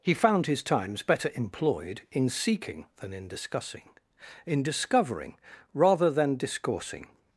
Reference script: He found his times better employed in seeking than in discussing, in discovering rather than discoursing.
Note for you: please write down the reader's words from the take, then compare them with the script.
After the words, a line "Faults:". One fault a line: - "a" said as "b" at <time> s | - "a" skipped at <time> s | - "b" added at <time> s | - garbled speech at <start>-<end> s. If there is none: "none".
He found his times better employed in seeking than in discussing, in discovering rather than discoursing.
Faults:
none